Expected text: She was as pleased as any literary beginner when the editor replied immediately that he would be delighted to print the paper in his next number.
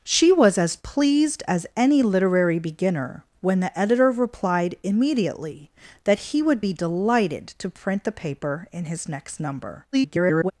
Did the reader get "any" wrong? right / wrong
right